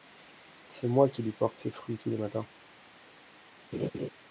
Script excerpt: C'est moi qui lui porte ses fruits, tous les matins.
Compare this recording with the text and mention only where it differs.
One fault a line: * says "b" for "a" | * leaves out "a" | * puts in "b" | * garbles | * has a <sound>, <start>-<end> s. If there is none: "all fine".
* has a laugh, 3.7-4.1 s